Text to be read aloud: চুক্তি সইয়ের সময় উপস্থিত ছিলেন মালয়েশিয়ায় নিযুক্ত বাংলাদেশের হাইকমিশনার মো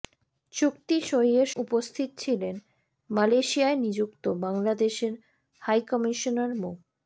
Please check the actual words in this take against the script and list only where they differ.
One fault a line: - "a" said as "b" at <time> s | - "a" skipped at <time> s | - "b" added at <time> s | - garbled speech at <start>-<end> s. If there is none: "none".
- "সময়" skipped at 1.5 s